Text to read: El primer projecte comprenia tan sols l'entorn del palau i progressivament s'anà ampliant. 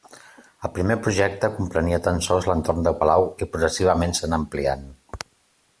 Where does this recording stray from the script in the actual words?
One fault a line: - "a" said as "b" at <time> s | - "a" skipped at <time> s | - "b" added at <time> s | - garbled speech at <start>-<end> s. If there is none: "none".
none